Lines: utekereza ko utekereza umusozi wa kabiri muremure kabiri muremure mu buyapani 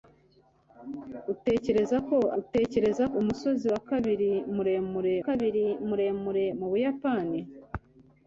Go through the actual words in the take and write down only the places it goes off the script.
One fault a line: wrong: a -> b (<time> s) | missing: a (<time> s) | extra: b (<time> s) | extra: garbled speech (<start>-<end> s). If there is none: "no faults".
no faults